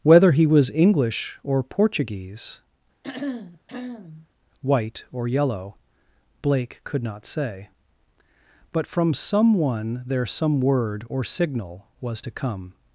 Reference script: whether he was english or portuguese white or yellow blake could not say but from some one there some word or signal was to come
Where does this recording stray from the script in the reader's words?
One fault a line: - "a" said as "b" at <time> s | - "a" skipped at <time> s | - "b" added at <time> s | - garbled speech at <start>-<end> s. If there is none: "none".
none